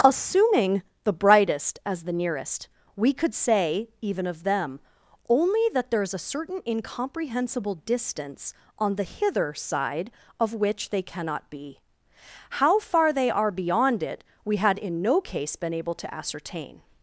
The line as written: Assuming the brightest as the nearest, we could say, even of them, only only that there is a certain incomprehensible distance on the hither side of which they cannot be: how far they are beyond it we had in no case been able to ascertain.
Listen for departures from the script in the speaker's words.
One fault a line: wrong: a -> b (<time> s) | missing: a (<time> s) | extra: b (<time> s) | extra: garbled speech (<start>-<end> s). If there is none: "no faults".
missing: only (5.6 s)